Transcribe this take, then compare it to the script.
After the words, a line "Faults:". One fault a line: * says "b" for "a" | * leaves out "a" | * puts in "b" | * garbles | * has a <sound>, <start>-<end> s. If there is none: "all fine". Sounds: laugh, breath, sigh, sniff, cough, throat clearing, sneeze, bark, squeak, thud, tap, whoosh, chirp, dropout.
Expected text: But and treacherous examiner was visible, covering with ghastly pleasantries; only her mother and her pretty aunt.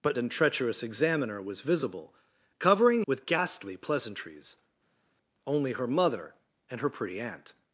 But and treacherous examiner was visible, covering with ghastly pleasantries; only her mother and her pretty aunt.
Faults:
all fine